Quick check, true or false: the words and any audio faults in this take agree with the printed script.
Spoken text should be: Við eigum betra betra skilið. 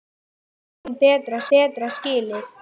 true